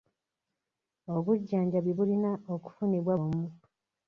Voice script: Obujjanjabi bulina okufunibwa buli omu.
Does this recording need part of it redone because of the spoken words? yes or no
yes